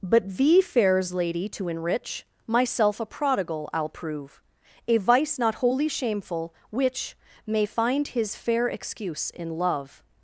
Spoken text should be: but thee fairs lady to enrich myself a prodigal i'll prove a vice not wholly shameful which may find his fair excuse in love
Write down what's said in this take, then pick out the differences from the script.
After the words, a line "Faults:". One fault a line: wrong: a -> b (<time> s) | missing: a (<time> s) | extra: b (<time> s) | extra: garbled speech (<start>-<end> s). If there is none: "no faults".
but thee fairs lady to enrich myself a prodigal i'll prove a vice not wholly shameful which may find his fair excuse in love
Faults:
no faults